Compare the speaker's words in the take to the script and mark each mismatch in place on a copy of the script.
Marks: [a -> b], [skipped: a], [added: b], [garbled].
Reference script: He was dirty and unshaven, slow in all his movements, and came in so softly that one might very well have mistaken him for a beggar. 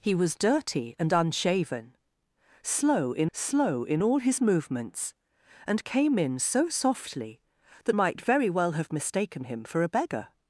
He was dirty and unshaven, slow in [added: slow in] all his movements, and came in so softly that [skipped: one] might very well have mistaken him for a beggar.